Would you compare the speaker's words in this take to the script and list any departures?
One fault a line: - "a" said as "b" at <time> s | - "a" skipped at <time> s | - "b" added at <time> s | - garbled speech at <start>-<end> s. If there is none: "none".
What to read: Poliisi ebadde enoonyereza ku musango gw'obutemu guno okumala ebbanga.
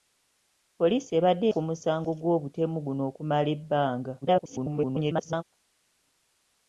- "enoonyereza" skipped at 1.4 s
- garbled speech at 4.2-5.4 s